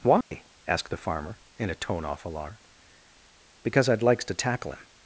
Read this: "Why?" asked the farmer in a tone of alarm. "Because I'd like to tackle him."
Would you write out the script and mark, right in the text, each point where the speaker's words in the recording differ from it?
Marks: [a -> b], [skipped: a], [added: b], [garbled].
"Why?" asked the farmer in a tone [of -> off] alarm. "Because I'd [like -> likes] to tackle him."